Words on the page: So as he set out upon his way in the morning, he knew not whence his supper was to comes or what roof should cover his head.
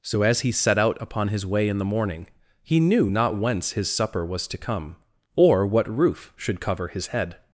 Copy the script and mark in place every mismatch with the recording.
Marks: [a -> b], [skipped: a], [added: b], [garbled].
So as he set out upon his way in the morning, he knew not whence his supper was to [comes -> come] or what roof should cover his head.